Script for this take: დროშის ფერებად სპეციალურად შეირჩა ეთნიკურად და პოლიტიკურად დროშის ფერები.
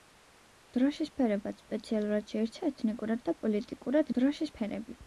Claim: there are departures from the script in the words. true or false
false